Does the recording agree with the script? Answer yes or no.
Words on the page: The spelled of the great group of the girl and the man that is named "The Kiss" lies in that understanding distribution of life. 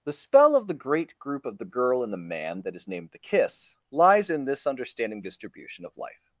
no